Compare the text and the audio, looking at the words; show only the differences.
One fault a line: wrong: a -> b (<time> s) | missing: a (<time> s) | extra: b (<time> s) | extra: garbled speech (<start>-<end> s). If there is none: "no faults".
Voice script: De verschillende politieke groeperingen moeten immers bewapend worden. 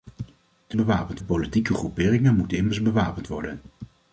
wrong: verschillende -> bewapend (0.7 s)